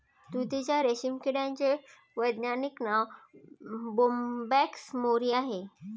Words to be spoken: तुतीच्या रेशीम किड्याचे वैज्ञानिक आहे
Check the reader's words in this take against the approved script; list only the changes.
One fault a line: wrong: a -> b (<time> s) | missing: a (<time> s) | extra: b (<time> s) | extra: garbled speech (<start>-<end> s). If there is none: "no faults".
extra: नाव बोंबॅक्स मोरी (2.8 s)